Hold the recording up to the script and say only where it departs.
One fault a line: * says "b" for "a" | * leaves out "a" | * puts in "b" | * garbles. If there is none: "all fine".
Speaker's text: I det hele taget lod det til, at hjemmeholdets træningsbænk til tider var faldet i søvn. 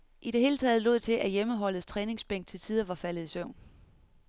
* leaves out "det"